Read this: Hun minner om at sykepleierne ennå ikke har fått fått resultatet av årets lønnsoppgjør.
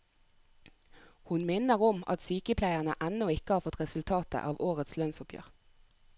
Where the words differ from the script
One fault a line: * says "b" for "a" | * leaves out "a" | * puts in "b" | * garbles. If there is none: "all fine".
* leaves out "fått"